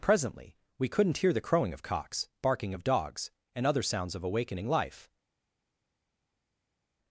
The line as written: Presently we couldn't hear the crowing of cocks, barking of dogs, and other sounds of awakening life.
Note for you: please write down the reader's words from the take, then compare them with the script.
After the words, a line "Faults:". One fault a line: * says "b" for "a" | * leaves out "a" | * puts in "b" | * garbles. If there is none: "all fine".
Presently we couldn't hear the crowing of cocks, barking of dogs, and other sounds of awakening life.
Faults:
all fine